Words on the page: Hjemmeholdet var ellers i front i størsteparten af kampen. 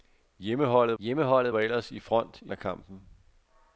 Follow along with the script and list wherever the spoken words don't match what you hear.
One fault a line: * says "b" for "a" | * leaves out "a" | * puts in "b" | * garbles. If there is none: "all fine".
* puts in "hjemmeholdet"
* leaves out "størsteparten"